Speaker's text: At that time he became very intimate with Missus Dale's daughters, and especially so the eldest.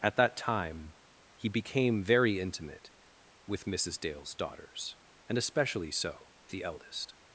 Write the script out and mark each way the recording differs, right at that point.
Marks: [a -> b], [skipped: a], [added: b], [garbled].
At that time he became very intimate with Missus Dale's daughters, and especially so the eldest.